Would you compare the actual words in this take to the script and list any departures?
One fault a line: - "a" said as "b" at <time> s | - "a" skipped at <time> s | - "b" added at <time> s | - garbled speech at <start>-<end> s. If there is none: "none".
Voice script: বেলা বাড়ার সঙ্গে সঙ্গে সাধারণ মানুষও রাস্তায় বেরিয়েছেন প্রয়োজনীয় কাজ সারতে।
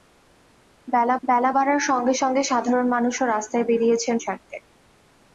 - "বেলা" added at 1.2 s
- "প্রয়োজনীয় কাজ" skipped at 4.1 s